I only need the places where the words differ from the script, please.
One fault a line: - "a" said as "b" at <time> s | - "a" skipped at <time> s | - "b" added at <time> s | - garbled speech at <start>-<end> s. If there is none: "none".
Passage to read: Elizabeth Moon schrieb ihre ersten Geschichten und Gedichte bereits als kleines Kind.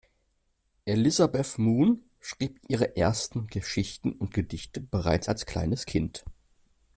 none